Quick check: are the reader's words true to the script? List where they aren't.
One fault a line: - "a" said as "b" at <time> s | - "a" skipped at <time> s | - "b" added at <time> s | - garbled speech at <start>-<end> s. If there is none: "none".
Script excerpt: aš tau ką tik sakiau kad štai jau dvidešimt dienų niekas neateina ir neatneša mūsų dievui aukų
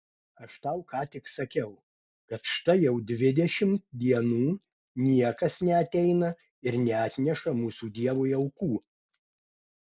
none